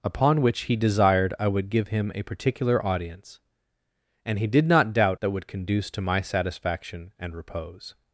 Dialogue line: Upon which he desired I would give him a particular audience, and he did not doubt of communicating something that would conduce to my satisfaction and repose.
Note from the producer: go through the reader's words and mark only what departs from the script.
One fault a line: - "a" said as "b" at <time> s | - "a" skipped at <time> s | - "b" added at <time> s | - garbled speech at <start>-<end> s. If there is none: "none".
- "of communicating something" skipped at 5.2 s